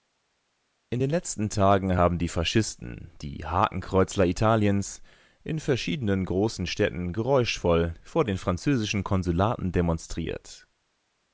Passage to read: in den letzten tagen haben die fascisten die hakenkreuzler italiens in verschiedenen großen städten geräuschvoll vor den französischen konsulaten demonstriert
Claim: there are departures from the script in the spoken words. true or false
false